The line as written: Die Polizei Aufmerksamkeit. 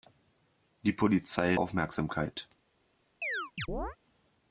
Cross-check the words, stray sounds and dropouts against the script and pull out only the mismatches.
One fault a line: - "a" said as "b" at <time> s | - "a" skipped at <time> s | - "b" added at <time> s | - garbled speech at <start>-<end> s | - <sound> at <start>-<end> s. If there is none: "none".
- chirp at 3.2-4.0 s